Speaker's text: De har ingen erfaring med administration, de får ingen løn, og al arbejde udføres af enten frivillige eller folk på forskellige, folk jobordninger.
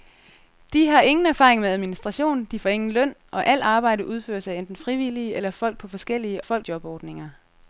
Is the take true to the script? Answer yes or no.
yes